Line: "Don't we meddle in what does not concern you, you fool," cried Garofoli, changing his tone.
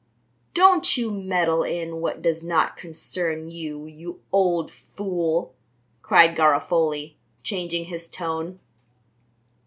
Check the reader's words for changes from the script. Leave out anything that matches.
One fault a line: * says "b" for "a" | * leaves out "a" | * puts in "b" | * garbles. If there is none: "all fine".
* says "you" for "we"
* puts in "old"